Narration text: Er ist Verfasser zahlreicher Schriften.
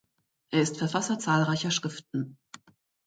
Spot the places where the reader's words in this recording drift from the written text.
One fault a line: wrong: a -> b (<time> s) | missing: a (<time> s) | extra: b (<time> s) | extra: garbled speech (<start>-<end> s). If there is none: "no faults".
no faults